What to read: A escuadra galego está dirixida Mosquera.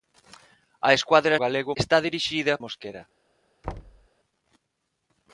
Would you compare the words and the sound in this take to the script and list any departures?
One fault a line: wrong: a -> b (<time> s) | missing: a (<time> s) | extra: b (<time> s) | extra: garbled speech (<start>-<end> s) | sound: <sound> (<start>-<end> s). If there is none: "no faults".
sound: thud (3.6-4.1 s)